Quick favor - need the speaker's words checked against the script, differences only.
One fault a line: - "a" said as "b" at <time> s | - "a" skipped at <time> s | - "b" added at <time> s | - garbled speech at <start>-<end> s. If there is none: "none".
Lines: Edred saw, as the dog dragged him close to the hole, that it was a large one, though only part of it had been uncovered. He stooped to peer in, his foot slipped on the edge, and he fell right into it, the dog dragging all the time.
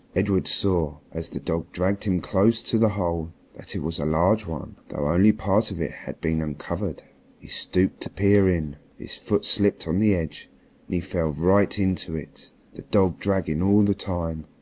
none